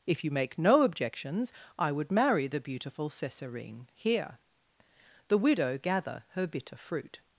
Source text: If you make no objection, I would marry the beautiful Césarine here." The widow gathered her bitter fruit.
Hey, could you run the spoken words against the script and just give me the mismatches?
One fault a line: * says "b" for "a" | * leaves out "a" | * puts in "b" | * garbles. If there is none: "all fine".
* says "objections" for "objection"
* says "gather" for "gathered"